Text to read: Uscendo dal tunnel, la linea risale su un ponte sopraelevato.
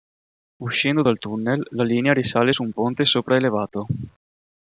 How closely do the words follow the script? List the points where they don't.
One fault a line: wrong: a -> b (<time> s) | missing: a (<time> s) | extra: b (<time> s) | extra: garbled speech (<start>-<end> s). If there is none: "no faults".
no faults